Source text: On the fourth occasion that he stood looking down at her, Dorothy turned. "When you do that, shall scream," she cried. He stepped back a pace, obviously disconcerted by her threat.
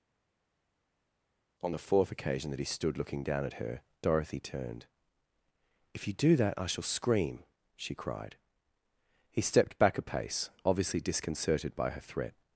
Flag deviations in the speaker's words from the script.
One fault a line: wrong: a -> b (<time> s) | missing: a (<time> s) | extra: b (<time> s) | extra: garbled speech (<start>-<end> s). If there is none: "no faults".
wrong: When -> If (5.9 s)
extra: I (6.6 s)